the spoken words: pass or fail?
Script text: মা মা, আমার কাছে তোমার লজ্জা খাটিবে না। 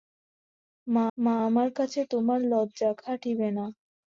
pass